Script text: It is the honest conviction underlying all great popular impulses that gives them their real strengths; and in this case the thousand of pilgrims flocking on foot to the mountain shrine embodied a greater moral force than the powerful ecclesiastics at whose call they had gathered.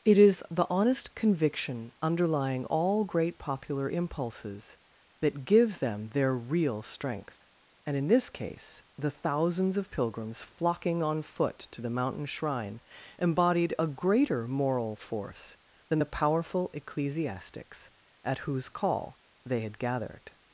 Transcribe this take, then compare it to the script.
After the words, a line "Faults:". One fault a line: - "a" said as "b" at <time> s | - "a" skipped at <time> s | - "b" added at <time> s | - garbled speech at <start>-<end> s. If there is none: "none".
It is the honest conviction underlying all great popular impulses that gives them their real strength; and in this case the thousands of pilgrims flocking on foot to the mountain shrine embodied a greater moral force than the powerful ecclesiastics at whose call they had gathered.
Faults:
- "strengths" said as "strength" at 6.8 s
- "thousand" said as "thousands" at 9.1 s